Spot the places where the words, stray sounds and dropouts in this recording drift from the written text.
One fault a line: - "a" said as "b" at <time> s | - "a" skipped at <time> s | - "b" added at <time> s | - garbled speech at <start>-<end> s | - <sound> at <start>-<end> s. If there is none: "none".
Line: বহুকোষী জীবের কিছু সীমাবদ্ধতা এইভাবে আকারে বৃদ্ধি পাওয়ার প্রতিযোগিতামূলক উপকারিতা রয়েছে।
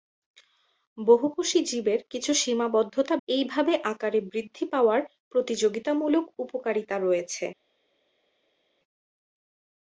none